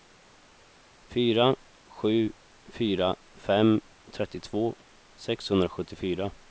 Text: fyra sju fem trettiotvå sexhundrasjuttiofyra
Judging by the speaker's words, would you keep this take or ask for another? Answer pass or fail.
fail